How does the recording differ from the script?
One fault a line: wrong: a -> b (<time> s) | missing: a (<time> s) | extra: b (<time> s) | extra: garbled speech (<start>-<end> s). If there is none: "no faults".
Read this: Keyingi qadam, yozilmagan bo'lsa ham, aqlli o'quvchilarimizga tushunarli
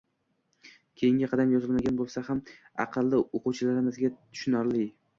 no faults